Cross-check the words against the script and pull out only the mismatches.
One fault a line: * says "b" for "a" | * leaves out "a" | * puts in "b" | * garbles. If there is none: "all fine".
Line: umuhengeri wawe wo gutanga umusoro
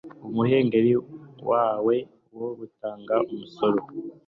all fine